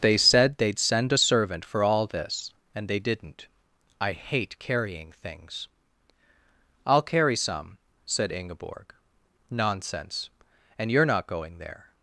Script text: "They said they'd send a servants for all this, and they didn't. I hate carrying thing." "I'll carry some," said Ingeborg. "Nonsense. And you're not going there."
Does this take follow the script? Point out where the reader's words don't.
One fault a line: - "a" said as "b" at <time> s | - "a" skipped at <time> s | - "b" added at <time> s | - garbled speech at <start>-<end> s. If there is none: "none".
- "servants" said as "servant" at 1.2 s
- "thing" said as "things" at 5.1 s